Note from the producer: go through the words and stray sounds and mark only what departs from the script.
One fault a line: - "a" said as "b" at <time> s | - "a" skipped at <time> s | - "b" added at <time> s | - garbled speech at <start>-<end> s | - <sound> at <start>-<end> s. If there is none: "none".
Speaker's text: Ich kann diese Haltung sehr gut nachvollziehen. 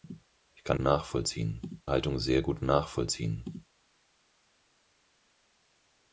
- "diese" said as "nachvollziehen" at 0.8 s